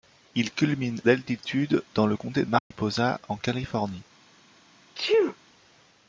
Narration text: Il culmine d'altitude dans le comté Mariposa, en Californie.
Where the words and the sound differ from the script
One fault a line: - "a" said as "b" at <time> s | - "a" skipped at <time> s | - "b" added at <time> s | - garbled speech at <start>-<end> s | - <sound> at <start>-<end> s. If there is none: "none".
- dropout at 2.6-2.7 s
- sneeze at 4.9-5.4 s